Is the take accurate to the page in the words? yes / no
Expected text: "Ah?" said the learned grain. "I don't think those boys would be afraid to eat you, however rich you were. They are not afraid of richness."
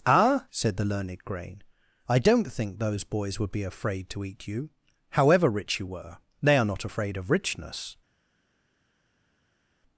yes